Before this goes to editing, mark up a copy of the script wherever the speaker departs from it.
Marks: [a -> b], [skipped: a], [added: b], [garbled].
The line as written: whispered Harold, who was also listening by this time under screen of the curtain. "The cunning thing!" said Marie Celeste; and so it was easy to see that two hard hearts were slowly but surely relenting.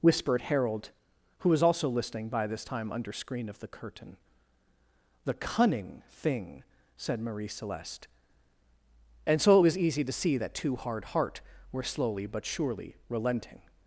whispered Harold, who was also listening by this time under screen of the curtain. "The cunning thing!" said Marie Celeste; and so it was easy to see that two hard [hearts -> heart] were slowly but surely relenting.